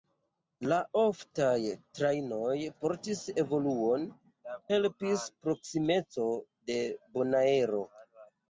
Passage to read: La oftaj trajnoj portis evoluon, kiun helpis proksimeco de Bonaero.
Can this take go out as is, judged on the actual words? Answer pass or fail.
fail